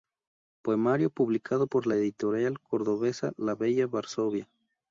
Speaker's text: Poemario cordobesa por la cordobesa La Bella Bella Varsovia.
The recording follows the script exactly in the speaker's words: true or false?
false